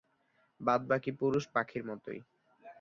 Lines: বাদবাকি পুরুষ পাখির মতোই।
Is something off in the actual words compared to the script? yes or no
no